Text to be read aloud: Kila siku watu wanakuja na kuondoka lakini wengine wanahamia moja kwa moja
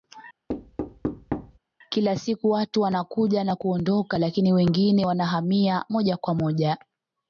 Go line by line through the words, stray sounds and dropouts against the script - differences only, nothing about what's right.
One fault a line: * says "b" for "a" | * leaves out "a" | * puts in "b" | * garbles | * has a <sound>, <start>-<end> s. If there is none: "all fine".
* has a thud, 0.5-1.6 s